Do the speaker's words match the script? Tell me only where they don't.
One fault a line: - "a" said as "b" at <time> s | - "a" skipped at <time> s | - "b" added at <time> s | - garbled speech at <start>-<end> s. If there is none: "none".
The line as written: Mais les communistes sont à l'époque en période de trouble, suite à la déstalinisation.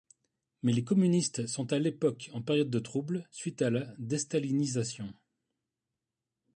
none